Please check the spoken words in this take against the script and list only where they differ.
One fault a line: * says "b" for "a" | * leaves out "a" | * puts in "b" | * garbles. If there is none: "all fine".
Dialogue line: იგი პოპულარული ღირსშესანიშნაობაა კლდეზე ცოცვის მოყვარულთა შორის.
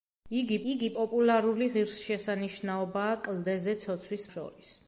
* puts in "იგი"
* leaves out "მოყვარულთა"